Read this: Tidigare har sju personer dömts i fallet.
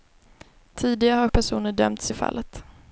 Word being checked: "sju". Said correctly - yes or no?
no